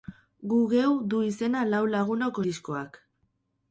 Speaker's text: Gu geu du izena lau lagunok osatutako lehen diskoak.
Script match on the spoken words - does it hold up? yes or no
no